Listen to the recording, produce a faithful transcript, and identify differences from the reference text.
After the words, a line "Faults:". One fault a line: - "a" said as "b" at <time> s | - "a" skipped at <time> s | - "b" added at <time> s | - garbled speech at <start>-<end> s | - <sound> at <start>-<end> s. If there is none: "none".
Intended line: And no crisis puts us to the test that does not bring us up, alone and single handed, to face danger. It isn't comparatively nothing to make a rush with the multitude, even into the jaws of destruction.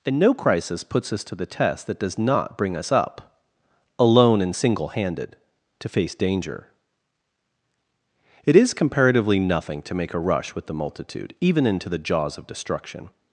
And no crisis puts us to the test that does not bring us up, alone and single handed, to face danger. It is comparatively nothing to make a rush with the multitude, even into the jaws of destruction.
Faults:
- "isn't" said as "is" at 8.5 s